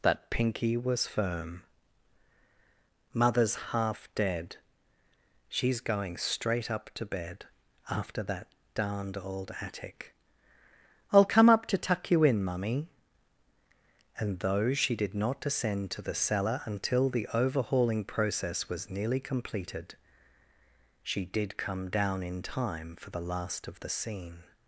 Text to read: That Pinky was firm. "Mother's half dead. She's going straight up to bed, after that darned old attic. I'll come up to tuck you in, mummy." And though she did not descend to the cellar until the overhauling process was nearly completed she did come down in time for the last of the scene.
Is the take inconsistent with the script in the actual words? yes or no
no